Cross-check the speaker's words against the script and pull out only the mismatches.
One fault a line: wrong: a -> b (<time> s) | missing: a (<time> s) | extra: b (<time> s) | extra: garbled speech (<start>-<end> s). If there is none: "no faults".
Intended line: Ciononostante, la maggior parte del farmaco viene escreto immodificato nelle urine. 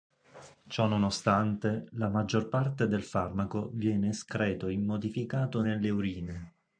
no faults